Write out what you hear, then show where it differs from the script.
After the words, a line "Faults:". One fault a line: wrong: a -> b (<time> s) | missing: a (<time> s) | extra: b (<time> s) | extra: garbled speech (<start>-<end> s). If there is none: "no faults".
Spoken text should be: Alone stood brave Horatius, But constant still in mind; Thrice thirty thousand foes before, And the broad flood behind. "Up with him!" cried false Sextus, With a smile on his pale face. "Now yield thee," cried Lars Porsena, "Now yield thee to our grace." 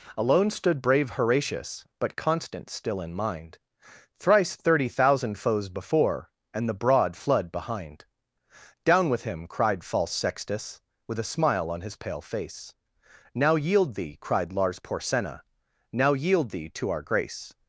Alone stood brave Horatius, But constant still in mind; Thrice thirty thousand foes before, And the broad flood behind. "Down with him!" cried false Sextus, With a smile on his pale face. "Now yield thee," cried Lars Porsena, "Now yield thee to our grace."
Faults:
wrong: Up -> Down (8.8 s)